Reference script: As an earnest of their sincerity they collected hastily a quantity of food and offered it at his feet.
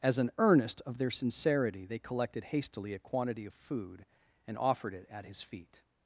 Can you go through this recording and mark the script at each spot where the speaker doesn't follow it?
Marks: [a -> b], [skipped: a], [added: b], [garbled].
As an earnest of their sincerity they collected hastily a quantity of food and offered it at his feet.